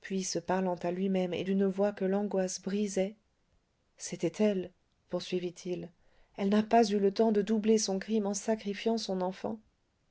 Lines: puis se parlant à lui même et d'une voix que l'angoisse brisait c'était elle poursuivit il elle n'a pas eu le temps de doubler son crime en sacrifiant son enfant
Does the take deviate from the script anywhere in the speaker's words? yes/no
no